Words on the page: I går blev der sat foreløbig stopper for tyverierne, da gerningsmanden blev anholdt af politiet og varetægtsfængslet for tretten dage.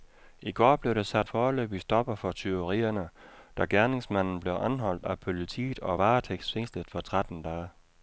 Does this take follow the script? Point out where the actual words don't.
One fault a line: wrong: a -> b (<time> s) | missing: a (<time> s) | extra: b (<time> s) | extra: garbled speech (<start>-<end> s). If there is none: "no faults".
no faults